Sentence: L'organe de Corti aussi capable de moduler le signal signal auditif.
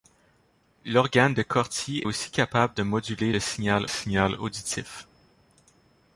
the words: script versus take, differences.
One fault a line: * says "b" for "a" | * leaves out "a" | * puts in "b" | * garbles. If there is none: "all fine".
all fine